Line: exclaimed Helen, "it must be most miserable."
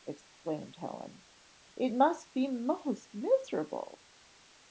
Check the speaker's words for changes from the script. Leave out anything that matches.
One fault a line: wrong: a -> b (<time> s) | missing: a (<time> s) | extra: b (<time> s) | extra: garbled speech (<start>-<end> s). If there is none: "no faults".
no faults